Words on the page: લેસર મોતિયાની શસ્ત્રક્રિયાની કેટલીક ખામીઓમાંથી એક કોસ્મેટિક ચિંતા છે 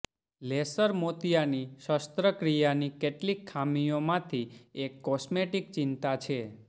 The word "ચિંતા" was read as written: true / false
true